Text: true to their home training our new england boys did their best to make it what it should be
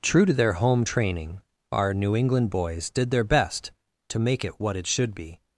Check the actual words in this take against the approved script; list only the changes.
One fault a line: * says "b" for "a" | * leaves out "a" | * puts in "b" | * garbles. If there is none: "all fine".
all fine